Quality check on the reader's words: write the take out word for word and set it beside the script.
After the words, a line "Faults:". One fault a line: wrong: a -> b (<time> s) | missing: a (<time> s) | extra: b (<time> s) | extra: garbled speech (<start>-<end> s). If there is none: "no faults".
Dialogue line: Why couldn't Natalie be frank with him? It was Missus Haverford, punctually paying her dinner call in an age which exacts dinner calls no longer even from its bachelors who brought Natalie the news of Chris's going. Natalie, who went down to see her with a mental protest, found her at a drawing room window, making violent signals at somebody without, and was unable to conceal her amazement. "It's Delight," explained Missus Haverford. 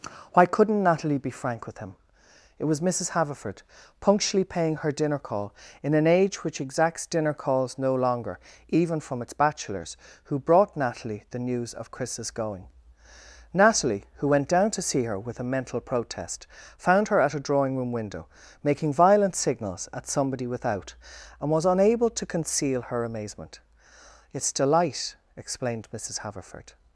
Why couldn't Natalie be frank with him? It was Missus Haverford, punctually paying her dinner call in an age which exacts dinner calls no longer even from its bachelors who brought Natalie the news of Chris's going. Natalie, who went down to see her with a mental protest, found her at a drawing room window, making violent signals at somebody without, and was unable to conceal her amazement. "It's Delight," explained Missus Haverford.
Faults:
no faults